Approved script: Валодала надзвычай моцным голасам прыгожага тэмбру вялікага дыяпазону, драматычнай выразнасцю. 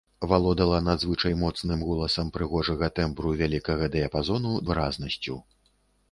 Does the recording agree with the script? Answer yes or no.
no